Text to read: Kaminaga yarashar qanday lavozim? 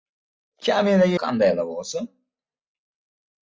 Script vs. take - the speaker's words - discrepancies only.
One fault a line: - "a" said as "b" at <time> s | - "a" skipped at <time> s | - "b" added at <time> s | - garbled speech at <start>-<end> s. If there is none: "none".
- "yarashar" skipped at 1.2 s